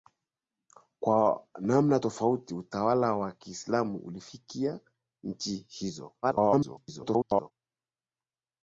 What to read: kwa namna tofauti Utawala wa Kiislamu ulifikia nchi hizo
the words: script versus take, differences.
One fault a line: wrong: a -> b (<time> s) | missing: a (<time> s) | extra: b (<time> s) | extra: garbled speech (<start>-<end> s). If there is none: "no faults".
extra: garbled speech (6.2-7.5 s)